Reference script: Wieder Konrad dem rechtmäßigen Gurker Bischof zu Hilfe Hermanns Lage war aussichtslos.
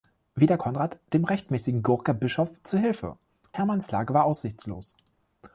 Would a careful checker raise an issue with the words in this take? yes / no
no